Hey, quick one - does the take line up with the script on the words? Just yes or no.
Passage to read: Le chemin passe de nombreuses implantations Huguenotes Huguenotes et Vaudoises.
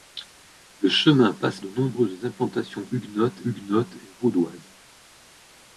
yes